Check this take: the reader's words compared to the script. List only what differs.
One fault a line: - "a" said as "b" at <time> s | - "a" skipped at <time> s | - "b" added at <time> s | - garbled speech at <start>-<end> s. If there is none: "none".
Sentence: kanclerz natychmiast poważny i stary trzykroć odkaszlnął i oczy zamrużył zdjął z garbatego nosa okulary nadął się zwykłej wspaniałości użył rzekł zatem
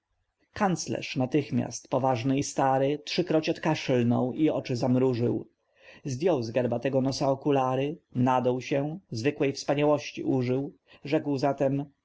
none